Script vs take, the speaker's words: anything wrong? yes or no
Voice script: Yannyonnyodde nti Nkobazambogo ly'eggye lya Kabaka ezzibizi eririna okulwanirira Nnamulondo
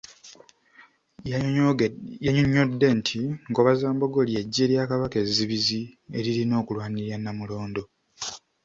no